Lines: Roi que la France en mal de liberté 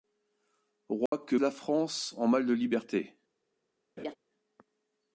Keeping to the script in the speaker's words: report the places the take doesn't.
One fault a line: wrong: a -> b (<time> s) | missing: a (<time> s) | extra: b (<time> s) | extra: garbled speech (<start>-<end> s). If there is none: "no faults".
no faults